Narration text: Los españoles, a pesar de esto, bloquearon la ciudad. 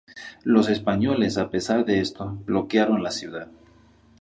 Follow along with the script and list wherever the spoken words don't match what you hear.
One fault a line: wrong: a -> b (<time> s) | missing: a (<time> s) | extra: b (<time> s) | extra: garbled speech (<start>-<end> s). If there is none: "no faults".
no faults